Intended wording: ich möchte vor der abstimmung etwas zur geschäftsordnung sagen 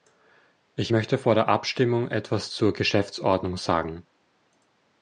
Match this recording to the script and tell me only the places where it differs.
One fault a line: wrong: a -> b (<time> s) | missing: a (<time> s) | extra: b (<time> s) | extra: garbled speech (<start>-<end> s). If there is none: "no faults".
no faults